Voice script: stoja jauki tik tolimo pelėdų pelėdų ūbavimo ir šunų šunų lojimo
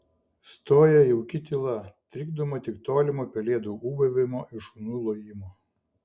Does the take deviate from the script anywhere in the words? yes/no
yes